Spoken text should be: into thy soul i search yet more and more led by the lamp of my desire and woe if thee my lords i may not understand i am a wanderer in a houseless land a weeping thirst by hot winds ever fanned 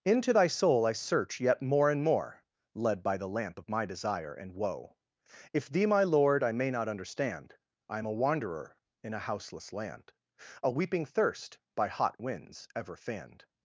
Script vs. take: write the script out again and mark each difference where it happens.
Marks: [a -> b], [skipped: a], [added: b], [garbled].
into thy soul i search yet more and more led by the lamp of my desire and woe if thee my [lords -> lord] i may not understand i am a wanderer in a houseless land a weeping thirst by hot winds ever fanned